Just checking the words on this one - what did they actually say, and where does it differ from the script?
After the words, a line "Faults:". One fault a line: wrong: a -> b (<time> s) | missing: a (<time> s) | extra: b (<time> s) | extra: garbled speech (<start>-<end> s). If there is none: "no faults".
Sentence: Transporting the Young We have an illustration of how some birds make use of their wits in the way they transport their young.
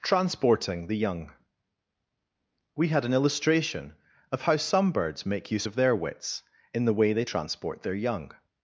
Transporting the Young We had an illustration of how some birds make use of their wits in the way they transport their young.
Faults:
wrong: have -> had (2.9 s)